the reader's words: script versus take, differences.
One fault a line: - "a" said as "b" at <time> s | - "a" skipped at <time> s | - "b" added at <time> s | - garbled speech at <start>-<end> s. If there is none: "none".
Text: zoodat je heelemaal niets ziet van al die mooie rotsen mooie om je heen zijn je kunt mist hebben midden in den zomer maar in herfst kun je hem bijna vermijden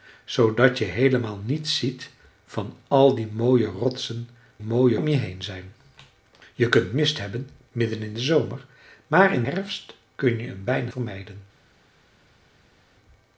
none